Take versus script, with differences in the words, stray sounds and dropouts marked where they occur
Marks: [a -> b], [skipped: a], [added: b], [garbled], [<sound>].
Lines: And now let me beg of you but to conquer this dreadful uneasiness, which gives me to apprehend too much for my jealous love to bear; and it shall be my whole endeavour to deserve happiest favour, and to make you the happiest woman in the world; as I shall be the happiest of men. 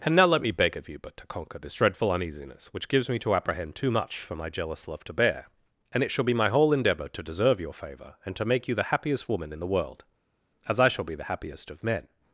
And now let me beg of you but to conquer this dreadful uneasiness, which gives me to apprehend too much for my jealous love to bear; and it shall be my whole endeavour to deserve [happiest -> your] favour, and to make you the happiest woman in the world; as I shall be the happiest of men.